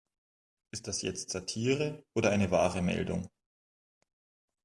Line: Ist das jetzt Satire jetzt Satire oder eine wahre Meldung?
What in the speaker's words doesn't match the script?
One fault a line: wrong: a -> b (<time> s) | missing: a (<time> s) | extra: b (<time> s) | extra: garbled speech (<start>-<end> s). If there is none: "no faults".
missing: jetzt Satire (2.0 s)